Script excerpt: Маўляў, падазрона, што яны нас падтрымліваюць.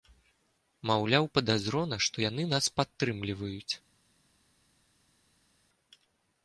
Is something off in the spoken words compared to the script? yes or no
no